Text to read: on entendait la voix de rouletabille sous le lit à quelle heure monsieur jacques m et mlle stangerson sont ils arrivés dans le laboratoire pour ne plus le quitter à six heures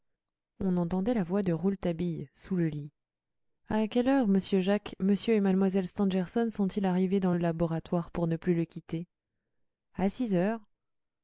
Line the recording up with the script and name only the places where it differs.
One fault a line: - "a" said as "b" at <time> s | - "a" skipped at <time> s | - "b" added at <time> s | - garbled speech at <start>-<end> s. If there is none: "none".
none